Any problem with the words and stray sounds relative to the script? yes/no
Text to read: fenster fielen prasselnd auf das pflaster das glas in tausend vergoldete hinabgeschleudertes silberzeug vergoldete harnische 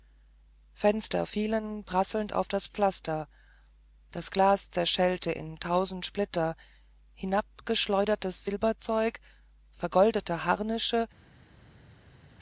yes